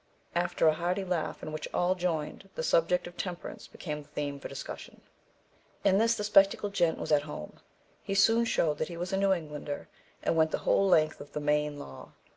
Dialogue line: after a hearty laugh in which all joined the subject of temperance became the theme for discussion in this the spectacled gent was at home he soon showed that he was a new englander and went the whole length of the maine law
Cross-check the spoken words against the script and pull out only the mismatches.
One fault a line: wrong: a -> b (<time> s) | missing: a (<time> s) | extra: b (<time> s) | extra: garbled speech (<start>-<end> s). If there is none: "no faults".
no faults